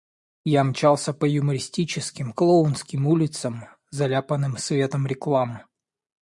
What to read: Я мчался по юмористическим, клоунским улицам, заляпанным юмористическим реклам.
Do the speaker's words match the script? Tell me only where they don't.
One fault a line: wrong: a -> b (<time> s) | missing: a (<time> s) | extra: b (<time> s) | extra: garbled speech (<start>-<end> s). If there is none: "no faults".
wrong: юмористическим -> светом (4.6 s)